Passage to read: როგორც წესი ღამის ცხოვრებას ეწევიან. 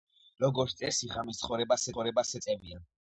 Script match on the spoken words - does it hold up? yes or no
no